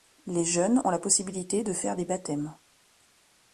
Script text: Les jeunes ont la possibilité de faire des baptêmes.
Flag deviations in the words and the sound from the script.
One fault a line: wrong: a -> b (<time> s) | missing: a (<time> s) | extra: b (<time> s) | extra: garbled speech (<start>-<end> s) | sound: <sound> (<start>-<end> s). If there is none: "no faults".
no faults